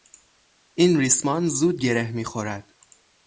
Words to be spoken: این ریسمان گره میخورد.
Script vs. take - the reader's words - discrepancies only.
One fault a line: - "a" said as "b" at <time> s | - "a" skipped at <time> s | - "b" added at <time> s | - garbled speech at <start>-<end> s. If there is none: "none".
- "زود" added at 1.5 s